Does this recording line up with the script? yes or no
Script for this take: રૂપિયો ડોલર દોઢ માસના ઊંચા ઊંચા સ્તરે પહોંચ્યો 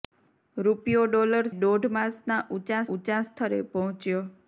yes